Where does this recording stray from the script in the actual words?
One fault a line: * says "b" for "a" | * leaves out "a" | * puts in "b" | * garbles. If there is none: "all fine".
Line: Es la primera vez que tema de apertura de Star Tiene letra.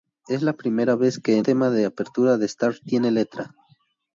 all fine